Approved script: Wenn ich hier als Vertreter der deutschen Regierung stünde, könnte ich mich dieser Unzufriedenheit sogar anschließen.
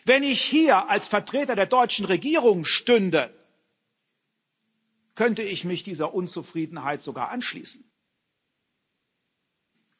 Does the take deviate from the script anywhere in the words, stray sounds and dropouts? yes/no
no